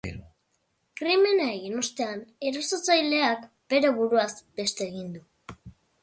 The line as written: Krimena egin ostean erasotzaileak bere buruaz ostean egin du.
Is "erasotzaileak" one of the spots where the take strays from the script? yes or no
no